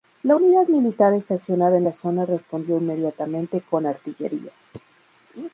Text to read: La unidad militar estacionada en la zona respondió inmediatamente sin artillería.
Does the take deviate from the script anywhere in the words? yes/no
yes